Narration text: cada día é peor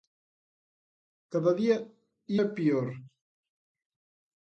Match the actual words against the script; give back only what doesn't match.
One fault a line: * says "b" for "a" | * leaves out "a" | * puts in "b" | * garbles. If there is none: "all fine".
all fine